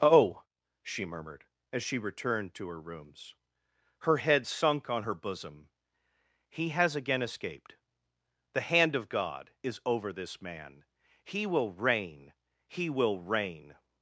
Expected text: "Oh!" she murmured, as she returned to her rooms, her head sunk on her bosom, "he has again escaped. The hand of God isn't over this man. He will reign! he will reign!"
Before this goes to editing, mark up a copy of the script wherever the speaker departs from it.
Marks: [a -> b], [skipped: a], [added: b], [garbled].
"Oh!" she murmured, as she returned to her rooms, her head sunk on her bosom, "he has again escaped. The hand of God [isn't -> is] over this man. He will reign! he will reign!"